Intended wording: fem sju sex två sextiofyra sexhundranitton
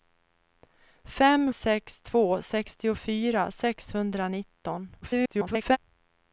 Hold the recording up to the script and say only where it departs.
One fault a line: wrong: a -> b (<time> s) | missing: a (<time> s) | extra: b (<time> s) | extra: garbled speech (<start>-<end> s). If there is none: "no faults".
missing: sju (1.5 s)
extra: garbled speech (5.0-5.8 s)